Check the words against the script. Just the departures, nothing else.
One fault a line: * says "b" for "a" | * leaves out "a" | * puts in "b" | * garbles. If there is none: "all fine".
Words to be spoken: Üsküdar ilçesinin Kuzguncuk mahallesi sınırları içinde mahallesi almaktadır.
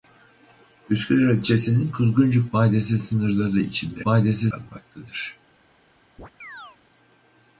all fine